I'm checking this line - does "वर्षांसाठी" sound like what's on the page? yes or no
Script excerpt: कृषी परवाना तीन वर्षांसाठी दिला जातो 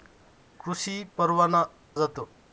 no